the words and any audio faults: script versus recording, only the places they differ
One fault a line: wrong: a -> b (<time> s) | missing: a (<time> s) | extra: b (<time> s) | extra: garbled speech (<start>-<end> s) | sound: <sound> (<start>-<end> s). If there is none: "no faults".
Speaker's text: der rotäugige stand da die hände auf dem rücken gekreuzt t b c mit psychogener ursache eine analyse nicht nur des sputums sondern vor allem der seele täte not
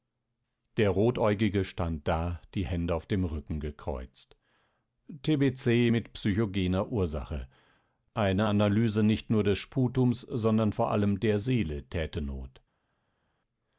no faults